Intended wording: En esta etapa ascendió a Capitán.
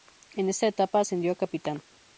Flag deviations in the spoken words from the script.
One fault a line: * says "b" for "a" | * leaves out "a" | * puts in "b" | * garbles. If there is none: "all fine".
all fine